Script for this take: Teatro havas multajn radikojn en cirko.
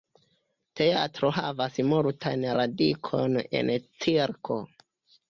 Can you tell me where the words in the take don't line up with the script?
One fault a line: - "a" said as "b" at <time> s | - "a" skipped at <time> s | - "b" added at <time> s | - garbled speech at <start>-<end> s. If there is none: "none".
none